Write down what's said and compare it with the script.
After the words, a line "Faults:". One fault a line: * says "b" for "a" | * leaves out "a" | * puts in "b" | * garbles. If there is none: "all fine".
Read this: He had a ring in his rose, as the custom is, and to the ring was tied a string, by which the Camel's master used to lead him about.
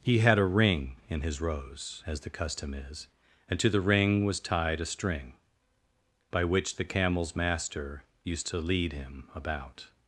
He had a ring in his rose, as the custom is, and to the ring was tied a string, by which the Camel's master used to lead him about.
Faults:
all fine